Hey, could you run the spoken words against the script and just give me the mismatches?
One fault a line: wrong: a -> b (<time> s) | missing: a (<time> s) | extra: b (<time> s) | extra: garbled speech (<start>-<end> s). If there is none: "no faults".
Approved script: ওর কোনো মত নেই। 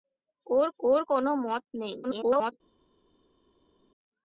extra: ওর (0.8 s)
extra: garbled speech (2.0-2.5 s)